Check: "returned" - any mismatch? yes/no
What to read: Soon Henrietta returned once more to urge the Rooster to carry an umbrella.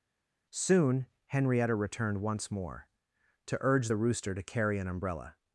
no